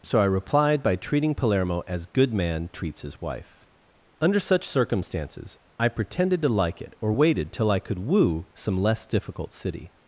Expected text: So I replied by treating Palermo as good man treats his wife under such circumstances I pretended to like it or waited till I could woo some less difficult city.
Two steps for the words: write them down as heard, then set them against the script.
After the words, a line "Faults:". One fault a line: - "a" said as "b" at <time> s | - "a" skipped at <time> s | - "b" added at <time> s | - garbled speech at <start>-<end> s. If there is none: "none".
So I replied by treating Palermo as good man treats his wife under such circumstances I pretended to like it or waited till I could woo some less difficult city.
Faults:
none